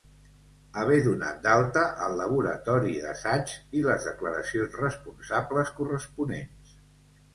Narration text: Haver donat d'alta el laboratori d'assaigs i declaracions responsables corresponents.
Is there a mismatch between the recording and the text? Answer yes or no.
yes